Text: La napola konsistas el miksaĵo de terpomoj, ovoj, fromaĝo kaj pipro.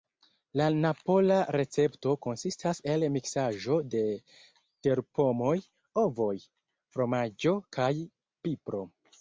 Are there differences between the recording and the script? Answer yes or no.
yes